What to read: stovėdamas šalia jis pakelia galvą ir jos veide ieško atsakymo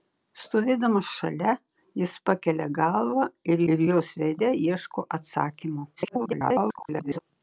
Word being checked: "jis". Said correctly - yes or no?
yes